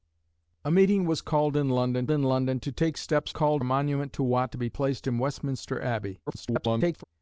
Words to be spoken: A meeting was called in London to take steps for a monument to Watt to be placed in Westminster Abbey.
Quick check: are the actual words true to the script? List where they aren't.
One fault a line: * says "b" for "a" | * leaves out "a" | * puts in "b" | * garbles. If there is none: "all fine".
* puts in "in London"
* says "called" for "for"
* garbles